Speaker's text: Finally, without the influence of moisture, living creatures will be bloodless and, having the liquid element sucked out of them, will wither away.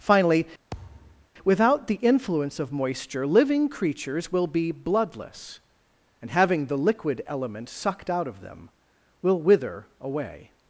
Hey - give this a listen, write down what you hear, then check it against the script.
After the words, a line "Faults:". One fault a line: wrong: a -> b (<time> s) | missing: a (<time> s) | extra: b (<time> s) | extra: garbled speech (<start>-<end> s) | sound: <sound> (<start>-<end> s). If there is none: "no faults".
Finally, without the influence of moisture, living creatures will be bloodless and, having the liquid element sucked out of them, will wither away.
Faults:
sound: thud (0.7-1.3 s)